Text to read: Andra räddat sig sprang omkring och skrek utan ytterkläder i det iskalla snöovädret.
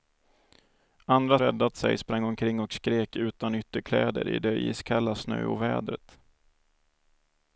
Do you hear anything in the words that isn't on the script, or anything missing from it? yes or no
no